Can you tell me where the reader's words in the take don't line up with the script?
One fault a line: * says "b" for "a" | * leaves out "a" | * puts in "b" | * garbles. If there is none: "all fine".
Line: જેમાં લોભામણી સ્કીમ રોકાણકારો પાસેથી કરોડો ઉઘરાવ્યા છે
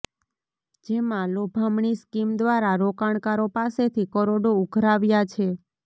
* puts in "દ્વારા"